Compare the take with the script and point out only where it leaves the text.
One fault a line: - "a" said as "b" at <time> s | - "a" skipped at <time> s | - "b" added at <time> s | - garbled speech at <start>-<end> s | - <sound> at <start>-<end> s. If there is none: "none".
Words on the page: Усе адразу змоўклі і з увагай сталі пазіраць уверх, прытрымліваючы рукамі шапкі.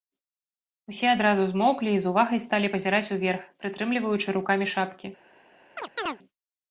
- chirp at 5.8-6.2 s